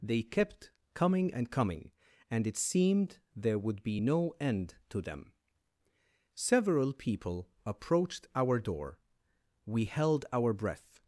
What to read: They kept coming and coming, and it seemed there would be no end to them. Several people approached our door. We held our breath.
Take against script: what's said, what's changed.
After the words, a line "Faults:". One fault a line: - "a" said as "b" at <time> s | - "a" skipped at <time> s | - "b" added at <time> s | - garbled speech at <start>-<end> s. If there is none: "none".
They kept coming and coming, and it seemed there would be no end to them. Several people approached our door. We held our breath.
Faults:
none